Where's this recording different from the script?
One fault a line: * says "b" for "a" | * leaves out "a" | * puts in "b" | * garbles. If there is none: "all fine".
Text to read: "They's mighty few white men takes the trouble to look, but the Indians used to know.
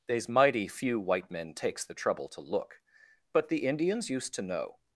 all fine